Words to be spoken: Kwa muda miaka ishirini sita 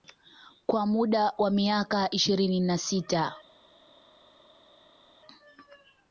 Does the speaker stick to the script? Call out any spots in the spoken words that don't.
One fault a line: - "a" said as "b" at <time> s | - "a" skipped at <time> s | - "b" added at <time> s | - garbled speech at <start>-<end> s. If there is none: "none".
- "wa" added at 1.4 s
- "na" added at 2.6 s